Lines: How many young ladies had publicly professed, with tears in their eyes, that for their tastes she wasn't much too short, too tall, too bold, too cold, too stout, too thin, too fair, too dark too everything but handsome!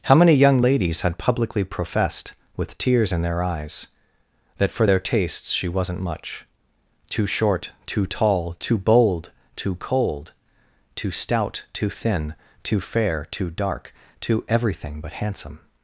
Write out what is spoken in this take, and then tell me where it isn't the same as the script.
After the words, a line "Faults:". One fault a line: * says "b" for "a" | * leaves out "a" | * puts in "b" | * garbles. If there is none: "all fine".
How many young ladies had publicly professed, with tears in their eyes, that for their tastes she wasn't much too short, too tall, too bold, too cold, too stout, too thin, too fair, too dark too everything but handsome!
Faults:
all fine